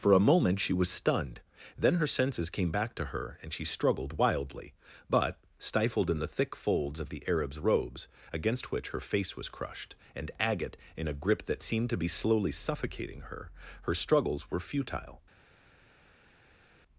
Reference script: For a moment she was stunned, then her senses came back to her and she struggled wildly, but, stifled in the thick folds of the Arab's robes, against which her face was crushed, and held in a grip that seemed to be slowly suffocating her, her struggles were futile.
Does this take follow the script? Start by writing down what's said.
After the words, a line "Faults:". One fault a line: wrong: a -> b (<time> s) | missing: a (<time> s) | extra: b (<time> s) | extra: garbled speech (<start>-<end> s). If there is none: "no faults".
For a moment she was stunned, then her senses came back to her and she struggled wildly, but, stifled in the thick folds of the Arab's robes, against which her face was crushed, and agate in a grip that seemed to be slowly suffocating her, her struggles were futile.
Faults:
wrong: held -> agate (10.4 s)